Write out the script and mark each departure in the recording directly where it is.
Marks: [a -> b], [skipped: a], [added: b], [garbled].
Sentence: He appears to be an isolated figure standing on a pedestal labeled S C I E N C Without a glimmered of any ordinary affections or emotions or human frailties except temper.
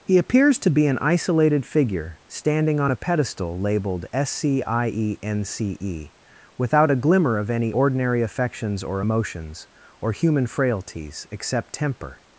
He appears to be an isolated figure standing on a pedestal labeled S C I E N C [added: E] Without a [glimmered -> glimmer] of any ordinary affections or emotions or human frailties except temper.